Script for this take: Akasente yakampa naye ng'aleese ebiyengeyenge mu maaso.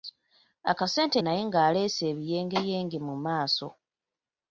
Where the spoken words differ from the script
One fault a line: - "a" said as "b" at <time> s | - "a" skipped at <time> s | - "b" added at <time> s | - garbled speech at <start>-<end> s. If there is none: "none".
- "yakampa" skipped at 1.2 s